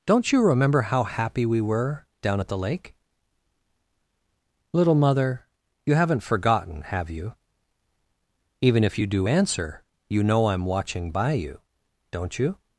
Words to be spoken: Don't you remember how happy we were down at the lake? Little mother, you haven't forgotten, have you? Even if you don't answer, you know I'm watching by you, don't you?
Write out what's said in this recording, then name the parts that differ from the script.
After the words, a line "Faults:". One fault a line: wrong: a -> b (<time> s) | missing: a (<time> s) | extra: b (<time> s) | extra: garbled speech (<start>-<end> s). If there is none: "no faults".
Don't you remember how happy we were down at the lake? Little mother, you haven't forgotten, have you? Even if you do answer, you know I'm watching by you, don't you?
Faults:
wrong: don't -> do (9.1 s)